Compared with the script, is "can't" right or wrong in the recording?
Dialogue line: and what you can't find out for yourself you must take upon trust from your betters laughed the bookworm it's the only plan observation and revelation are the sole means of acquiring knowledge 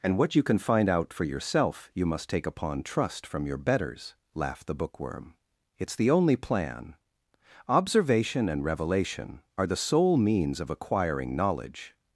wrong